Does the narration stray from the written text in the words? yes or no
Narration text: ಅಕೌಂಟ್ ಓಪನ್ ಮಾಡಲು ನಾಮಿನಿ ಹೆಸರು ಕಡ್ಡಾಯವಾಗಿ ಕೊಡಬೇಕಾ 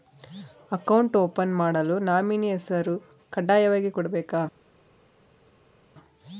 no